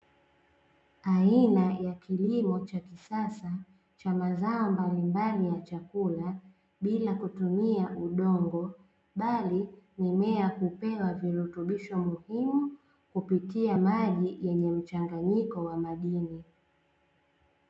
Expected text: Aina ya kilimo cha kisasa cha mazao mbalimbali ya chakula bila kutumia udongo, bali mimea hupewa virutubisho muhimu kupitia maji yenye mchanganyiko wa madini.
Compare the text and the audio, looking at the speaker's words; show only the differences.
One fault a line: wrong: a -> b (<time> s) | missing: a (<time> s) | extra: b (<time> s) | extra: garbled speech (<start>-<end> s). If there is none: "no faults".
no faults